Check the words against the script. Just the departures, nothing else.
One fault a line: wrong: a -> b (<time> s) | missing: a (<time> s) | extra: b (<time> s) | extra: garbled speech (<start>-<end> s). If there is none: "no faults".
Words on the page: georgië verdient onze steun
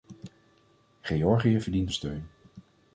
missing: onze (1.9 s)